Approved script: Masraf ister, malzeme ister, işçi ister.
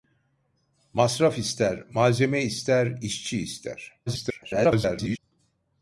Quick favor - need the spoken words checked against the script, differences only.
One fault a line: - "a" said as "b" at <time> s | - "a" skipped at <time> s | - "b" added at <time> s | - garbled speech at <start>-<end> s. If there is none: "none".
- garbled speech at 4.1-5.2 s